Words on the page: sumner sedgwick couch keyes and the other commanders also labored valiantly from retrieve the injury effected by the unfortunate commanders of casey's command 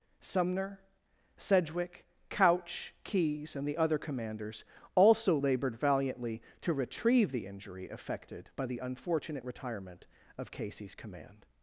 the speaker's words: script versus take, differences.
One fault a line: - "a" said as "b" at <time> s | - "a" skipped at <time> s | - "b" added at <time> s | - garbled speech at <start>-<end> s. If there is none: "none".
- "from" said as "to" at 6.6 s
- "commanders" said as "retirement" at 9.4 s